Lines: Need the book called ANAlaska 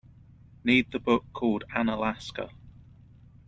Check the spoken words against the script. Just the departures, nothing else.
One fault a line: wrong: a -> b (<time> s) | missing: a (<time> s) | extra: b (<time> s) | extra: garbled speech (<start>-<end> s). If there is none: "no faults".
no faults